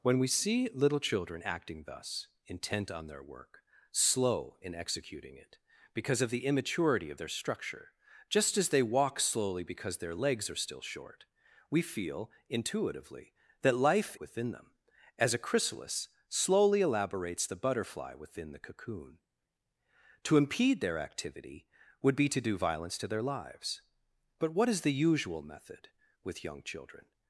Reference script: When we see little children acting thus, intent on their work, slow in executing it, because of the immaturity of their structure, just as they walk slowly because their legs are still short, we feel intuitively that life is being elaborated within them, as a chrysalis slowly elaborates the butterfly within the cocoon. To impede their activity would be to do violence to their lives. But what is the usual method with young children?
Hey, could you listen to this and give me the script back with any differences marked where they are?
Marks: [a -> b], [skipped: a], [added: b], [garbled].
When we see little children acting thus, intent on their work, slow in executing it, because of the immaturity of their structure, just as they walk slowly because their legs are still short, we feel intuitively that life [skipped: is being elaborated] within them, as a chrysalis slowly elaborates the butterfly within the cocoon. To impede their activity would be to do violence to their lives. But what is the usual method with young children?